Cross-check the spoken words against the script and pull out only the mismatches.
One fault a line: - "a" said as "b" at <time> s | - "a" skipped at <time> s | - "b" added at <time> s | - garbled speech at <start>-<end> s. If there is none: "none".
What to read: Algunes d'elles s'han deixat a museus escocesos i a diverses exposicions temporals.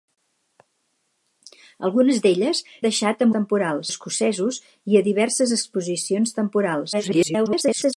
- "s'han" skipped at 2.6 s
- "museus" said as "temporals" at 3.4 s
- garbled speech at 6.9-7.9 s